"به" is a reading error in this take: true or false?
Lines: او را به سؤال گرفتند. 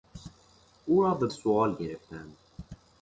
false